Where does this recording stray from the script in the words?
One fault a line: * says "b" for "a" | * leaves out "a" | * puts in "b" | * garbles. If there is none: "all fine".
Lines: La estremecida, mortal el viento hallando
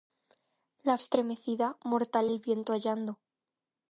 all fine